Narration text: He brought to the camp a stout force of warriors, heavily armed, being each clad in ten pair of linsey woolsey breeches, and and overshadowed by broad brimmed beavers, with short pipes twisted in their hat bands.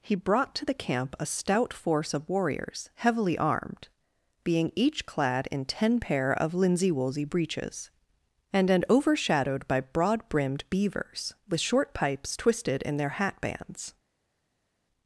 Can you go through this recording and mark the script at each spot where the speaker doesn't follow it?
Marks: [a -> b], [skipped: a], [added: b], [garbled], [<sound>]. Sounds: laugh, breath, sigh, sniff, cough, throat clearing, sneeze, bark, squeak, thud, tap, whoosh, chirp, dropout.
He brought to the camp a stout force of warriors, heavily armed, being each clad in ten pair of linsey woolsey breeches, and and overshadowed by broad brimmed beavers, with short pipes twisted in their hat bands.